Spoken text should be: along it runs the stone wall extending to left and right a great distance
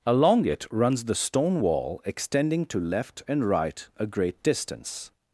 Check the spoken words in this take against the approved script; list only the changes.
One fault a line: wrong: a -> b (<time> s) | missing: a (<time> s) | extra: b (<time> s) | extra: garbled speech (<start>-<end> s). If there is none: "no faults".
no faults